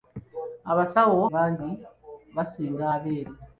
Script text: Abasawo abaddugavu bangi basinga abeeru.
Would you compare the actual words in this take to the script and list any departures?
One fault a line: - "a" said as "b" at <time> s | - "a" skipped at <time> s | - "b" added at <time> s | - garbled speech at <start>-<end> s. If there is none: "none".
- "abaddugavu" skipped at 1.2 s